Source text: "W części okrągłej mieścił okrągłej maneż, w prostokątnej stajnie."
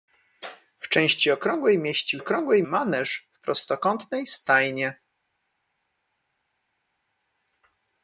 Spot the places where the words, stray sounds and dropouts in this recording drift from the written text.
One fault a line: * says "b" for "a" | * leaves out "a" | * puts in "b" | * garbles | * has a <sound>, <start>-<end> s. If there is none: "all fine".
all fine